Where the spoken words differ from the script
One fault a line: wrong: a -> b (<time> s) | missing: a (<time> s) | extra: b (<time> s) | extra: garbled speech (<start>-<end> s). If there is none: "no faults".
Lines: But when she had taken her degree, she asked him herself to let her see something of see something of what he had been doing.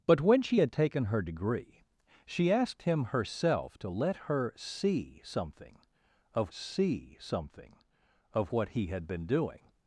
no faults